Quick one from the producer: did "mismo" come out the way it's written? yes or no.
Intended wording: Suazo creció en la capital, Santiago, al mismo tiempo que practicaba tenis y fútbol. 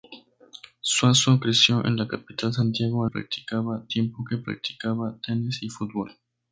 no